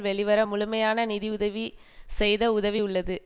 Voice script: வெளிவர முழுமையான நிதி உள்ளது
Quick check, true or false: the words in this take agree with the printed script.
false